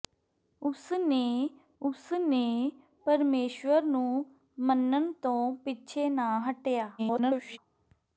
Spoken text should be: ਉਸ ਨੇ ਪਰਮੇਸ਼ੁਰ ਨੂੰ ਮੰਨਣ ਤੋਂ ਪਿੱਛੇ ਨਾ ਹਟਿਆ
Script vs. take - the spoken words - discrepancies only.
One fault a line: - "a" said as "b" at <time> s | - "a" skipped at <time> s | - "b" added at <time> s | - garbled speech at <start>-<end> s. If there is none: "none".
- "ਉਸ ਨੇ" added at 1.8 s
- garbled speech at 7.0-7.6 s